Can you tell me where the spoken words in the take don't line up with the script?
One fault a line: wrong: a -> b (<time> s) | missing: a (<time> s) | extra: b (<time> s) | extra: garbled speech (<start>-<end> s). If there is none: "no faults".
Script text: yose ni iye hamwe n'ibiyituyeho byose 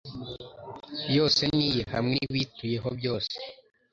no faults